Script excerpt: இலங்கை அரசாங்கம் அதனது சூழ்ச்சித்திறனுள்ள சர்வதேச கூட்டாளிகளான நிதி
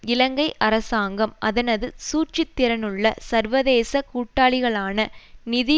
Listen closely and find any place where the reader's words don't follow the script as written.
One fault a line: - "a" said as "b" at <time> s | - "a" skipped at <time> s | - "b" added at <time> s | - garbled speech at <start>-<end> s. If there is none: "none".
none